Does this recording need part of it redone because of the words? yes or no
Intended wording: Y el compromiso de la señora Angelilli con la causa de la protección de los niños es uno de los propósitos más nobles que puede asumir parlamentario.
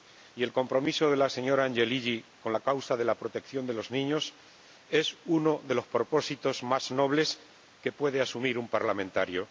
yes